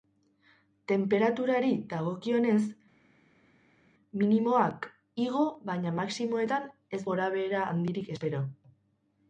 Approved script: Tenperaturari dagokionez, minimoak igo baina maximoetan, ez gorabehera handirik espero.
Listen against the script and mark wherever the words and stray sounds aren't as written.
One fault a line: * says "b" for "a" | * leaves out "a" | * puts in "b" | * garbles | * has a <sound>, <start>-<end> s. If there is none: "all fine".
all fine